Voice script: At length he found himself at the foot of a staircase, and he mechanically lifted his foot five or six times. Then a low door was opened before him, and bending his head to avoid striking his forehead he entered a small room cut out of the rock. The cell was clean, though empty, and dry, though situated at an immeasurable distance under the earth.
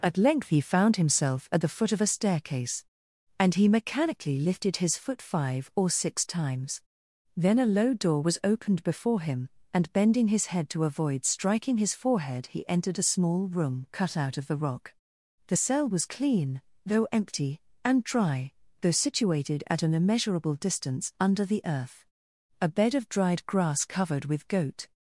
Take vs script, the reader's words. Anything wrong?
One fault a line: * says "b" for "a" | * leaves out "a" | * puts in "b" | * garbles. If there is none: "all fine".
* puts in "A bed of dried grass covered with goat"